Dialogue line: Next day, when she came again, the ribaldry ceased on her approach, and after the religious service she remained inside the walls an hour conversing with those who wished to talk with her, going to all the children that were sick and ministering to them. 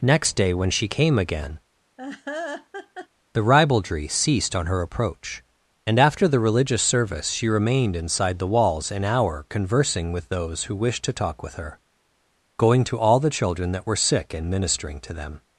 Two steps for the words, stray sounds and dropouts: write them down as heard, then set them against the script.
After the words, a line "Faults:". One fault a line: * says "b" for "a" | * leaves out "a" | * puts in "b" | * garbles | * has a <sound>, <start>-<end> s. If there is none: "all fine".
Next day, when she came again, the ribaldry ceased on her approach, and after the religious service she remained inside the walls an hour conversing with those who wished to talk with her, going to all the children that were sick and ministering to them.
Faults:
* has a laugh, 2.0-3.1 s